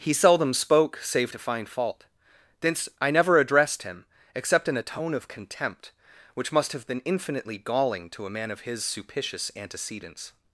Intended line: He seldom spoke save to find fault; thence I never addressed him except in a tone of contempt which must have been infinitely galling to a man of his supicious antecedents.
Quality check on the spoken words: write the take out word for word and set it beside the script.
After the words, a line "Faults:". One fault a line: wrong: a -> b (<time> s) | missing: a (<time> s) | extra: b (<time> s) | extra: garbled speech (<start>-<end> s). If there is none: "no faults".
He seldom spoke save to find fault; thence I never addressed him except in a tone of contempt which must have been infinitely galling to a man of his supicious antecedents.
Faults:
no faults